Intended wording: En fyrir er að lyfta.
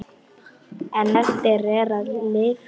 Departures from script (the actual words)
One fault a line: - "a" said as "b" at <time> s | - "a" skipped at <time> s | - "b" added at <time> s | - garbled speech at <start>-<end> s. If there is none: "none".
- "fyrir" said as "eftir" at 1.2 s